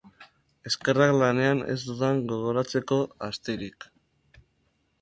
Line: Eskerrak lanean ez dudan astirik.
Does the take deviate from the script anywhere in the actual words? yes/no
yes